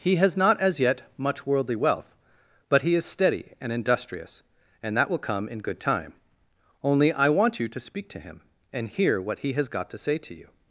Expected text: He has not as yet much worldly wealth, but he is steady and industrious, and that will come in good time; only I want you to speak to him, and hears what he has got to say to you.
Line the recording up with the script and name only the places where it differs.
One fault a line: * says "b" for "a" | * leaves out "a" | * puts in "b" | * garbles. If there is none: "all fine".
* says "hear" for "hears"